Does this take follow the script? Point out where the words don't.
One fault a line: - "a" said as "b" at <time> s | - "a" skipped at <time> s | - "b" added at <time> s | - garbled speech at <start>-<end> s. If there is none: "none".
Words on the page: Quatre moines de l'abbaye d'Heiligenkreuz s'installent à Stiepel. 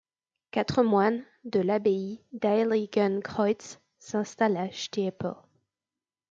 none